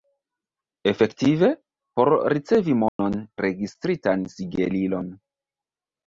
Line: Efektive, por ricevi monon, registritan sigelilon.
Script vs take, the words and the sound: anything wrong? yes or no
yes